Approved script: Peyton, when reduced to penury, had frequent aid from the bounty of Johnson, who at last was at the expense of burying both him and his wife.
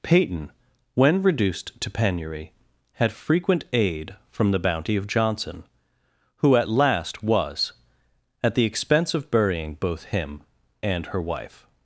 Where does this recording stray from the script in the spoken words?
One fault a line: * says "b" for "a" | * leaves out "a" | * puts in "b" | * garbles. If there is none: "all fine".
* says "her" for "his"